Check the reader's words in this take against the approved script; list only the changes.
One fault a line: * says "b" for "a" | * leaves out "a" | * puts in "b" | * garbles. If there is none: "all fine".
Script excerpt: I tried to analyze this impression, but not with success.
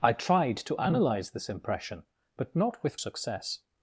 all fine